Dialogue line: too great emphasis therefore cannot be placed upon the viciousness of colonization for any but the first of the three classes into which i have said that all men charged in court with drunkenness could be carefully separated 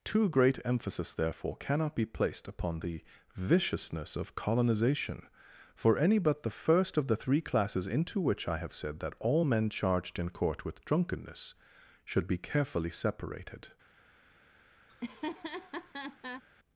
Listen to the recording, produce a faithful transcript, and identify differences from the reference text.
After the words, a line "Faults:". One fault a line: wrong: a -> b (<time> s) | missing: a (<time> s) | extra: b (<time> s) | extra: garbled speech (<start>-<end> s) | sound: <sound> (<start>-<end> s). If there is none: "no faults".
too great emphasis therefore cannot be placed upon the viciousness of colonization for any but the first of the three classes into which i have said that all men charged in court with drunkenness should be carefully separated
Faults:
wrong: could -> should (12.0 s)
sound: laugh (14.9-16.4 s)